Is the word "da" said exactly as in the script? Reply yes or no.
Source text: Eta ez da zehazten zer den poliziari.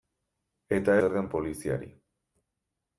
no